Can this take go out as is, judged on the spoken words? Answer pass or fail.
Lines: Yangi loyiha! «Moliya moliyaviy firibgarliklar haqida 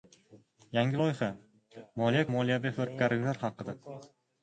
pass